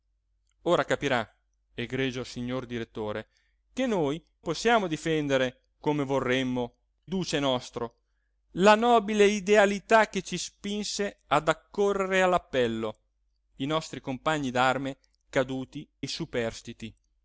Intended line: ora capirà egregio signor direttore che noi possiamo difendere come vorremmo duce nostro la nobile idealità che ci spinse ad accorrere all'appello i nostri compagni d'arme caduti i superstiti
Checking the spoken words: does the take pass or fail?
pass